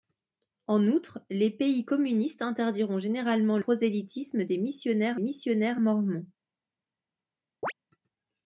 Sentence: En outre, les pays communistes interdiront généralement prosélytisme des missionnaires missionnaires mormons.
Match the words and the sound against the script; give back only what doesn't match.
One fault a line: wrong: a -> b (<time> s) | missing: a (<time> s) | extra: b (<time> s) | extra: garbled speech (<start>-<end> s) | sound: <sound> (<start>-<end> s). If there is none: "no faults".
sound: chirp (7.6-7.7 s)